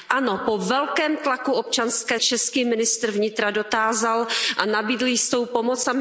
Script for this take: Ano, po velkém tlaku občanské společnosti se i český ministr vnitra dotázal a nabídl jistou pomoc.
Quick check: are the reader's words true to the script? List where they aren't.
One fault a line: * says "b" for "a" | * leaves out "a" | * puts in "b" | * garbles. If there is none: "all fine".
* leaves out "společnosti se i"